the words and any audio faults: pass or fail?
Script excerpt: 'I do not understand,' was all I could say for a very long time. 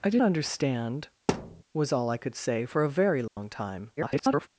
fail